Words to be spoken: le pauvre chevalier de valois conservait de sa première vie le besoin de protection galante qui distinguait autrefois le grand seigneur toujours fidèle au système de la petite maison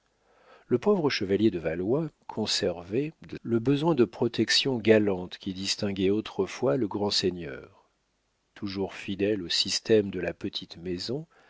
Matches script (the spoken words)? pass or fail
fail